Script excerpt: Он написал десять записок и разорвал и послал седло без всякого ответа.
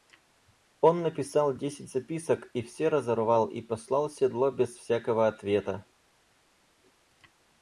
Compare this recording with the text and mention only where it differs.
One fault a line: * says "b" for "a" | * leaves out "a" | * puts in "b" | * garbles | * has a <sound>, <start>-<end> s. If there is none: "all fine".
* puts in "все"